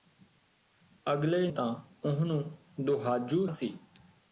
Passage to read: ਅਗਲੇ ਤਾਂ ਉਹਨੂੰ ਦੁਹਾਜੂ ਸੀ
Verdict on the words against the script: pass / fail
pass